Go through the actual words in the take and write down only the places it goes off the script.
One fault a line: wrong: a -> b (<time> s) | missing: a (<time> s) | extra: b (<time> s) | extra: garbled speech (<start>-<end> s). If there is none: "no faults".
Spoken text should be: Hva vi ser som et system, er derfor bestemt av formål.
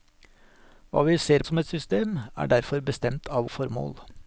no faults